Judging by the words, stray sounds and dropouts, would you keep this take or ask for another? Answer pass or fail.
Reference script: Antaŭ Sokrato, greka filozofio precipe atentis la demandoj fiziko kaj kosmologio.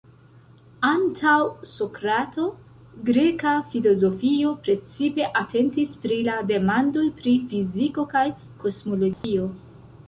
fail